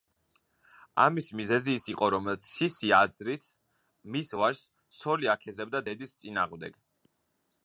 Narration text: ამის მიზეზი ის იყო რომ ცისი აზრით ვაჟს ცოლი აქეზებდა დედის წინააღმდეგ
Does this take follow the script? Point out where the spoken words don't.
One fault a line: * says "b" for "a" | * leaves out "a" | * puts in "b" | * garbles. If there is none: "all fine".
* puts in "მის"